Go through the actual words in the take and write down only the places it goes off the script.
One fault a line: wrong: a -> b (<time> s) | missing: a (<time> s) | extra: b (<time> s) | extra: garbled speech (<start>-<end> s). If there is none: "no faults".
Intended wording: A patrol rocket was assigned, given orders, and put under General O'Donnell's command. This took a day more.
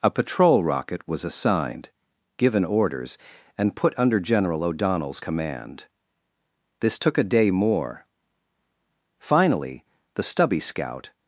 extra: Finally the stubby scout (9.2 s)